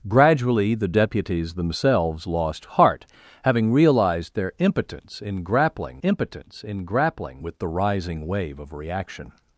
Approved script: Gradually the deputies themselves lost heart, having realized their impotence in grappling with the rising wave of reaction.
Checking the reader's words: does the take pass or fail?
fail